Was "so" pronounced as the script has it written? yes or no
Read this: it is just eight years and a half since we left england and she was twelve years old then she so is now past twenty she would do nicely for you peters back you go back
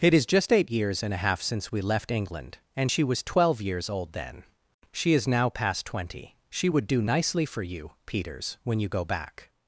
no